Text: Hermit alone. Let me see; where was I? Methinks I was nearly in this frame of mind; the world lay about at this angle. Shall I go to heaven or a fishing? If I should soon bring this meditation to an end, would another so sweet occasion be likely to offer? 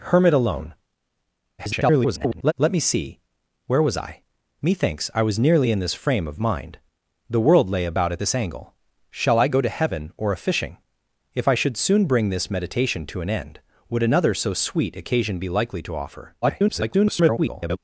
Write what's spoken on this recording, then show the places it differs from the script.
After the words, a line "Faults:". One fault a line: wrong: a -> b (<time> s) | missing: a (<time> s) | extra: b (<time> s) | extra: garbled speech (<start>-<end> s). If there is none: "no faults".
Hermit alone. [garbled] Let me see; where was I? Methinks I was nearly in this frame of mind; the world lay about at this angle. Shall I go to heaven or a fishing? If I should soon bring this meditation to an end, would another so sweet occasion be likely to offer? [garbled]
Faults:
extra: garbled speech (1.6-2.5 s)
extra: garbled speech (16.4-17.8 s)